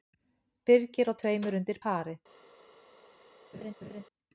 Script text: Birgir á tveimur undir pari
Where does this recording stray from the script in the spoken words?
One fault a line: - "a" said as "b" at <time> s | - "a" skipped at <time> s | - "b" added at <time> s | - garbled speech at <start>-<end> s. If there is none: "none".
none